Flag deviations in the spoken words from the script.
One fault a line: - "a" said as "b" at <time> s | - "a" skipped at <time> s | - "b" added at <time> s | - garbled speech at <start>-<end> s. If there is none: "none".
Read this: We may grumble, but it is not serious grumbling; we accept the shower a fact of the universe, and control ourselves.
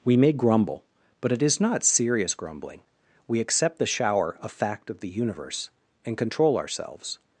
none